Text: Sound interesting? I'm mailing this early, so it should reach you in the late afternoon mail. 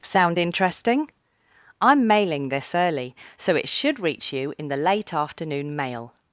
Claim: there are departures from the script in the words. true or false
false